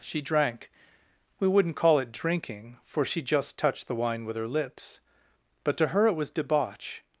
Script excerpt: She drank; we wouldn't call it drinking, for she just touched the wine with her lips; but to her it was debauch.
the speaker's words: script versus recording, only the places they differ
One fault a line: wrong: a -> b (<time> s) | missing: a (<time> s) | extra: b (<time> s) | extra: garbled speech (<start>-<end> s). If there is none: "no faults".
no faults